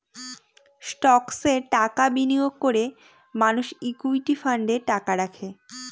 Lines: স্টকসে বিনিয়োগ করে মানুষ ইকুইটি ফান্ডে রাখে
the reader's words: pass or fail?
fail